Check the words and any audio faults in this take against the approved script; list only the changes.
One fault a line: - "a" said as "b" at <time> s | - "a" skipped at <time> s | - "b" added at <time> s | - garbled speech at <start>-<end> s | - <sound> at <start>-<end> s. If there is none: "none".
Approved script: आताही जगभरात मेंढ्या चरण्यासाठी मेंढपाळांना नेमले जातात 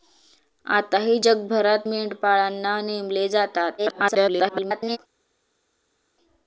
- "मेंढ्या चरण्यासाठी" skipped at 1.9 s
- garbled speech at 3.8-5.0 s